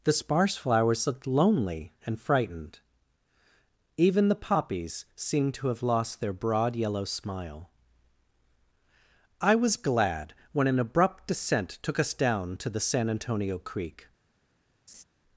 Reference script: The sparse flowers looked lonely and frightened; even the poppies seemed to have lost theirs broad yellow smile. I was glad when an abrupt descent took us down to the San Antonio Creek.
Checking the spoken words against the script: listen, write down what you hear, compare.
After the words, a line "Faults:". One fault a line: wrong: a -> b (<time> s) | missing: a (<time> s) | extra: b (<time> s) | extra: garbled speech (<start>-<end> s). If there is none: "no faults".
The sparse flowers looked lonely and frightened; even the poppies seemed to have lost their broad yellow smile. I was glad when an abrupt descent took us down to the San Antonio Creek.
Faults:
wrong: theirs -> their (6.2 s)